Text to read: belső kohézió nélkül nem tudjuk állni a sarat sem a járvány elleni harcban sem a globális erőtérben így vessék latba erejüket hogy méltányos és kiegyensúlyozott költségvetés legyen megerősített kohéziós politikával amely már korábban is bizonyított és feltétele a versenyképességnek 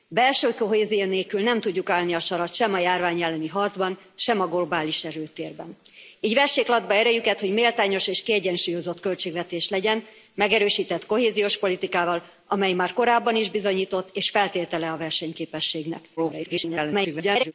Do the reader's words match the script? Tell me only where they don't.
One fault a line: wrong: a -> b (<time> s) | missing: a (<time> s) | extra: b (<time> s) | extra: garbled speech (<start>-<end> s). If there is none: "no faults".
extra: garbled speech (16.2-17.5 s)